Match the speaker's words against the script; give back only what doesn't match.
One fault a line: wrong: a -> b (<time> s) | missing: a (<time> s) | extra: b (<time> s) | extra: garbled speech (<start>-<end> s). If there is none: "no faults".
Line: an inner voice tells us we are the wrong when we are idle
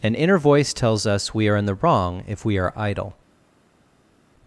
extra: in (1.6 s)
wrong: when -> if (2.2 s)